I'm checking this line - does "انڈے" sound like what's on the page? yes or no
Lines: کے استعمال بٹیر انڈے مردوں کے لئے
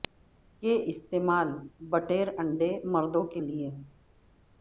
yes